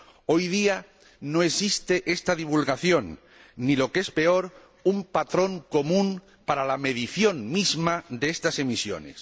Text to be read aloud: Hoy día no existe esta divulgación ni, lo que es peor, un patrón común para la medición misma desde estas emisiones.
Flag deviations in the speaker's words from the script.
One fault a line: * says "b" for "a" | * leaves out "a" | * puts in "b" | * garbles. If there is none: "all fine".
* says "de" for "desde"